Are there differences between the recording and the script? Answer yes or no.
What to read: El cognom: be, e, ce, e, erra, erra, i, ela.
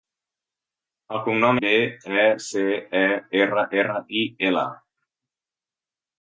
no